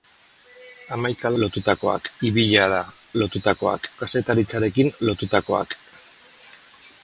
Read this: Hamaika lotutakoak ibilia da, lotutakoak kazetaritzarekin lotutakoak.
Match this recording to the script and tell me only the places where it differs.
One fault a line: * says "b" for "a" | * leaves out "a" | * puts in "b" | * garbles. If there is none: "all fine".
all fine